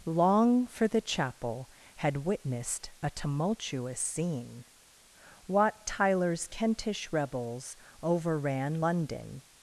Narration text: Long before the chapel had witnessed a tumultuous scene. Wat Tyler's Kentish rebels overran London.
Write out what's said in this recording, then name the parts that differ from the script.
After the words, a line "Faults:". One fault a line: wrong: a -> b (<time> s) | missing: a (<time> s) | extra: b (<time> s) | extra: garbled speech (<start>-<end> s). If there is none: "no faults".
Long for the chapel had witnessed a tumultuous scene. Wat Tyler's Kentish rebels overran London.
Faults:
wrong: before -> for (0.7 s)